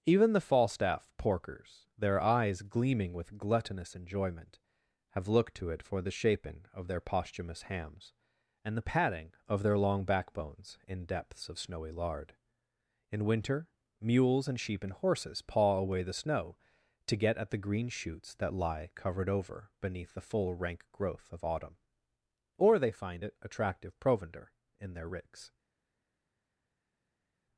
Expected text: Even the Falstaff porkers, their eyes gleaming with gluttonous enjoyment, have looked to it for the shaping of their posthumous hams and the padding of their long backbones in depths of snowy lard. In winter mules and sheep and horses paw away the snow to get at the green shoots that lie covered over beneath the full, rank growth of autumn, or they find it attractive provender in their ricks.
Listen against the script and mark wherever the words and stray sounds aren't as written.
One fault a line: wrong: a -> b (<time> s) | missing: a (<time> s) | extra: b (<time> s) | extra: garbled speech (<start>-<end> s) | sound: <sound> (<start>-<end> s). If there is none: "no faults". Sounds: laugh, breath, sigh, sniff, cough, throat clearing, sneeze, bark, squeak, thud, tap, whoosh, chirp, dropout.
no faults